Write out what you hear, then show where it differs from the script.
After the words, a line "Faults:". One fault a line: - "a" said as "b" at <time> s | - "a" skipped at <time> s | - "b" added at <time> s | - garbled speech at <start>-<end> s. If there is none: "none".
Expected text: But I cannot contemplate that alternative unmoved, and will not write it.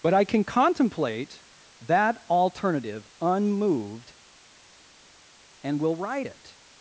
But I can contemplate that alternative unmoved, and will write it.
Faults:
- "cannot" said as "can" at 0.2 s
- "not" skipped at 6.0 s